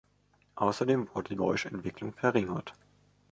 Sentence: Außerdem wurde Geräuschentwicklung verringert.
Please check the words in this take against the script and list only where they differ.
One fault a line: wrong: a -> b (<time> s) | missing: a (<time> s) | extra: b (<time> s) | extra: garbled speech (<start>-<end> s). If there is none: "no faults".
no faults